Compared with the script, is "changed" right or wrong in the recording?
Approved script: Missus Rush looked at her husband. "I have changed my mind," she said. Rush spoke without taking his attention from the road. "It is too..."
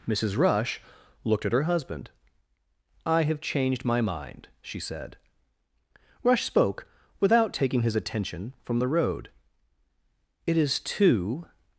right